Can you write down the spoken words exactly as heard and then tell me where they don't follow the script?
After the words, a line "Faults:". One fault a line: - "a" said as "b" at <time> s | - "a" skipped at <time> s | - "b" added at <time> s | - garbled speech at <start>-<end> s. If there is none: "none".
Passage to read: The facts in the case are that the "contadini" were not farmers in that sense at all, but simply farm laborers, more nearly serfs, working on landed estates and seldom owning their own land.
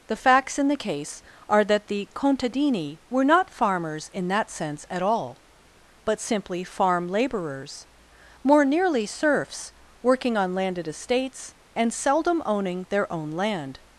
The facts in the case are that the "contadini" were not farmers in that sense at all, but simply farm laborers, more nearly serfs, working on landed estates and seldom owning their own land.
Faults:
none